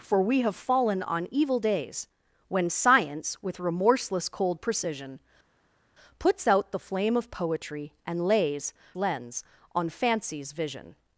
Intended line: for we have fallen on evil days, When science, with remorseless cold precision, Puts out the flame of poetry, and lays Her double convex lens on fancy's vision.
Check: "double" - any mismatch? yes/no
yes